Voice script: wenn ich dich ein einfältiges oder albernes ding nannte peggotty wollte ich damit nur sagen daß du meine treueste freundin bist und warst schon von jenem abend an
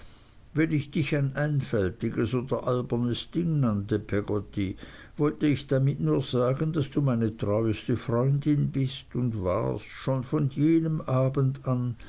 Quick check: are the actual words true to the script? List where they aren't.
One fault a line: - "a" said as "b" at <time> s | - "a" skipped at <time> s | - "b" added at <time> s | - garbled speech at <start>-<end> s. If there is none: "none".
none